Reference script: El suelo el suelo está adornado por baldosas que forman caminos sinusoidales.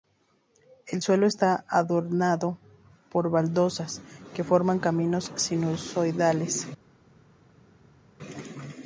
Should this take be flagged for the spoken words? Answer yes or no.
yes